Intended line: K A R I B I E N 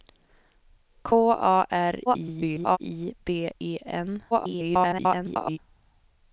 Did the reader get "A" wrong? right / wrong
right